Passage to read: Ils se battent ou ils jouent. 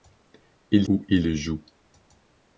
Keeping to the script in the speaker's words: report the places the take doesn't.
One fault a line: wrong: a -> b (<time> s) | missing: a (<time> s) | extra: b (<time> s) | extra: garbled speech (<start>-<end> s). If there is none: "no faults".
missing: se battent (0.9 s)